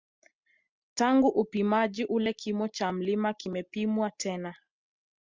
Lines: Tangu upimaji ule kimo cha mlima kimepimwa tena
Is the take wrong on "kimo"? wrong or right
right